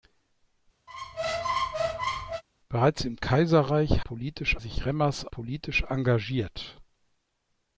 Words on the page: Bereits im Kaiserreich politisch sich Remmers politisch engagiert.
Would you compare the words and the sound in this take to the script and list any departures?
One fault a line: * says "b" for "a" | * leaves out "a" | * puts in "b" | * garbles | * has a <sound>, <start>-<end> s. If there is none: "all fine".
* has a squeak, 0.9-2.4 s